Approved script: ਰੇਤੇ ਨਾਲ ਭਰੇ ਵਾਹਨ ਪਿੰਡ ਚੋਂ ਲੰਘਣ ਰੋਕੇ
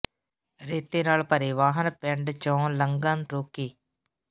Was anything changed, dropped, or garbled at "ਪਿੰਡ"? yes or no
no